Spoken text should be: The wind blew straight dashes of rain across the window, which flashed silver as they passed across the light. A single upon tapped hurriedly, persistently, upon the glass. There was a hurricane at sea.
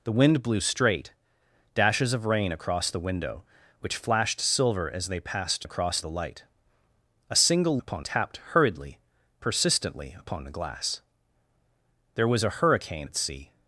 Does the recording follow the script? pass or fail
pass